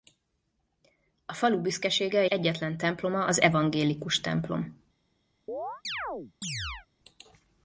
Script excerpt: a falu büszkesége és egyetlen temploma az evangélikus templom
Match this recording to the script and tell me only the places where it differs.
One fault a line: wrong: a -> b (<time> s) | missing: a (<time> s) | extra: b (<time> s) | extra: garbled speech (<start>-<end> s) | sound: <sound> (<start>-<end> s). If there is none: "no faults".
missing: és (2.2 s)
sound: chirp (5.5-6.9 s)